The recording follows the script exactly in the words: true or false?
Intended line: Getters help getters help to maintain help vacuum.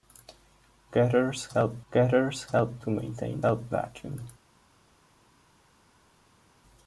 true